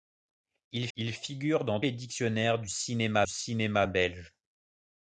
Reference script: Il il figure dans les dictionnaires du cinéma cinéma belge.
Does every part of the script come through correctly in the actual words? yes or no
yes